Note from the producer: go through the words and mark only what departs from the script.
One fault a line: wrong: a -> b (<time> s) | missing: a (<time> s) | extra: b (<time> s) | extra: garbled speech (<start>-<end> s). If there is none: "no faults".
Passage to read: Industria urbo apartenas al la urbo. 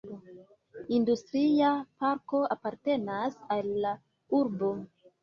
wrong: urbo -> parko (2.0 s)